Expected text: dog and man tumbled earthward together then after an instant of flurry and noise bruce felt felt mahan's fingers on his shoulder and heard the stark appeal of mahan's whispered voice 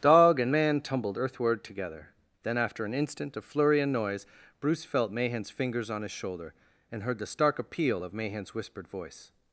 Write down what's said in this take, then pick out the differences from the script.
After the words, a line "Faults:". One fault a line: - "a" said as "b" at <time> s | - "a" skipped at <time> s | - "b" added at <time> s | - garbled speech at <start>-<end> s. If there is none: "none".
dog and man tumbled earthward together then after an instant of flurry and noise bruce felt mahan's fingers on his shoulder and heard the stark appeal of mahan's whispered voice
Faults:
- "felt" skipped at 5.1 s